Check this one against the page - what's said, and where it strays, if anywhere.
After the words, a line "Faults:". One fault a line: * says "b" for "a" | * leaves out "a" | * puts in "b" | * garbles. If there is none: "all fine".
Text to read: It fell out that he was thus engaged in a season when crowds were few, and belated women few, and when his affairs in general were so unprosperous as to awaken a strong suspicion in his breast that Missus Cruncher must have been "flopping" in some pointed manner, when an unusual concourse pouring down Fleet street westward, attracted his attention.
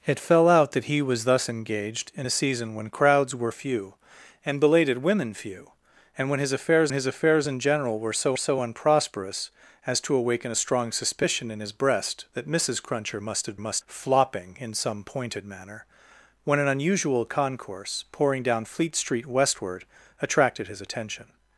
It fell out that he was thus engaged in a season when crowds were few, and belated women few, and when his affairs his affairs in general were so so unprosperous as to awaken a strong suspicion in his breast that Missus Cruncher must have must "flopping" in some pointed manner, when an unusual concourse pouring down Fleet street westward, attracted his attention.
Faults:
* puts in "his affairs"
* puts in "so"
* says "must" for "been"